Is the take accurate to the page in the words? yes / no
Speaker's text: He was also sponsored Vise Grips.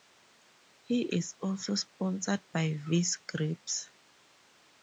no